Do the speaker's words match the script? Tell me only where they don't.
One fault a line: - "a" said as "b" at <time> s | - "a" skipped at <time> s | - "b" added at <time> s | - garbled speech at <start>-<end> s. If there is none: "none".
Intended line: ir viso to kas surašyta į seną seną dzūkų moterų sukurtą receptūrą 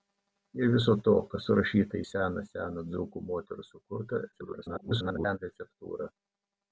- garbled speech at 4.3-5.4 s